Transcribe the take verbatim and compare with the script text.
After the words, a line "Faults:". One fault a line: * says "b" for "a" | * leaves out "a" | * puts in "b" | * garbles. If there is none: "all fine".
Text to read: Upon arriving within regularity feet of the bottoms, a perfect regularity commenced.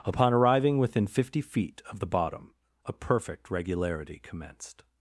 Upon arriving within fifty feet of the bottom, a perfect regularity commenced.
Faults:
* says "fifty" for "regularity"
* says "bottom" for "bottoms"